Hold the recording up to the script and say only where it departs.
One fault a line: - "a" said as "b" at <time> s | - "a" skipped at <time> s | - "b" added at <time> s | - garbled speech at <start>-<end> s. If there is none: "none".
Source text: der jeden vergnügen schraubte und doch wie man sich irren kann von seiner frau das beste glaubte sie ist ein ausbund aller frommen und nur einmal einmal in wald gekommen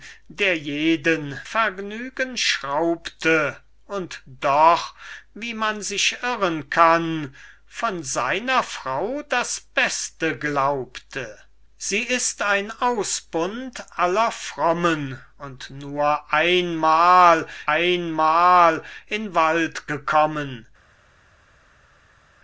none